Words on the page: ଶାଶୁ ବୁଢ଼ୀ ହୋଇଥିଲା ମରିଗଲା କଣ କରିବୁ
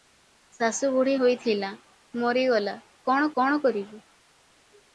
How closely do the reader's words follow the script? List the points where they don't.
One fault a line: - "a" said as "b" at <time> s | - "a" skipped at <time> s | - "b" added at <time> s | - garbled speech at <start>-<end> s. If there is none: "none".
- "କଣ" added at 3.4 s